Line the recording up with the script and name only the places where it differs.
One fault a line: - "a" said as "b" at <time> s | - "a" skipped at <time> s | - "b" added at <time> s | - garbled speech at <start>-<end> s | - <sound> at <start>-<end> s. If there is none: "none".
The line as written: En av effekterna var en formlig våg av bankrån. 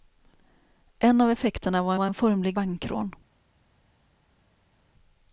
- "var" added at 1.9 s
- "våg av" skipped at 2.6 s